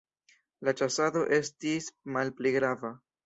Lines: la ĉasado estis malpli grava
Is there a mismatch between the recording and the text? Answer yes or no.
no